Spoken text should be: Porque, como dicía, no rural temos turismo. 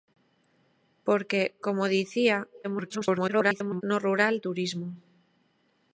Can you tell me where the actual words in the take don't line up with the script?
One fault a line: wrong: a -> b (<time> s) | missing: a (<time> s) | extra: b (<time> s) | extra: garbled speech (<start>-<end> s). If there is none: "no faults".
extra: garbled speech (2.6-3.8 s)
missing: temos (4.3 s)